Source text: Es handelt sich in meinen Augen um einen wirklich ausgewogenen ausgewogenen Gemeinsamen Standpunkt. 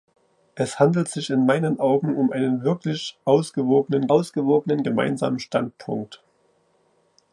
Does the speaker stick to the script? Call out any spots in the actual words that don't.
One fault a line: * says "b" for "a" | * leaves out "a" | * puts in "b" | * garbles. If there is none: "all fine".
all fine